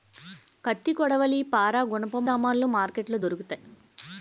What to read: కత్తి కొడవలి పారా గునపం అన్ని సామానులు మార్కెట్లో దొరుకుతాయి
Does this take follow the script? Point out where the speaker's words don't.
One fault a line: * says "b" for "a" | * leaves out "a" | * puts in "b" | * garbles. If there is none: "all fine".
* leaves out "అన్ని"